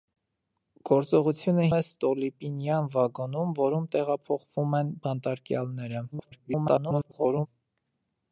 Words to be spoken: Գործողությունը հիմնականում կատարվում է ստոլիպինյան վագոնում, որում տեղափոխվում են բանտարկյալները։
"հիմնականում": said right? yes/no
no